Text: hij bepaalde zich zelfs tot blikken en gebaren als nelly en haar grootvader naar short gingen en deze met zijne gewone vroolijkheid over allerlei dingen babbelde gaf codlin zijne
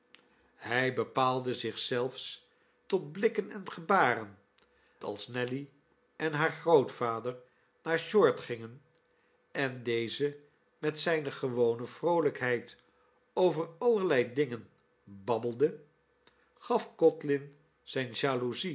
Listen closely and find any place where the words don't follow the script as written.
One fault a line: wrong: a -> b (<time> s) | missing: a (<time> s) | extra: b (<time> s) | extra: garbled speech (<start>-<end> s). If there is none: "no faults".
no faults